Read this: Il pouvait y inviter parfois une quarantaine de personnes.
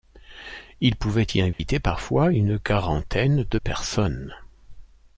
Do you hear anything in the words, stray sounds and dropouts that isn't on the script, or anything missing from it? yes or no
yes